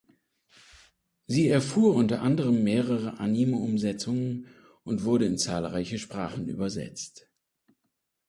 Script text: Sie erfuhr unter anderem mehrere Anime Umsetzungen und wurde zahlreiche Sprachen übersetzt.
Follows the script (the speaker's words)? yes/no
no